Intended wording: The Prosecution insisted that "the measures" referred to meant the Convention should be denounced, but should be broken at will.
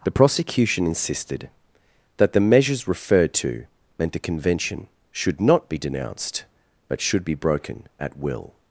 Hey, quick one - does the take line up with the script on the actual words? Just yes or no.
no